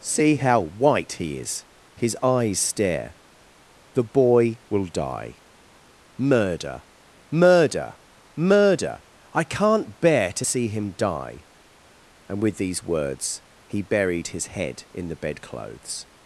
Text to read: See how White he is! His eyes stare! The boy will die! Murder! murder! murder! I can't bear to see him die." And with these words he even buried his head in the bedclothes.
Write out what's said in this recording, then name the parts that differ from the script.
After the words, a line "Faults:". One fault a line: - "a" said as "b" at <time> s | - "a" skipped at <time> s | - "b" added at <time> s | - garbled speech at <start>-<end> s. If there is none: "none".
See how White he is! His eyes stare! The boy will die! Murder! murder! murder! I can't bear to see him die." And with these words he buried his head in the bedclothes.
Faults:
- "even" skipped at 13.8 s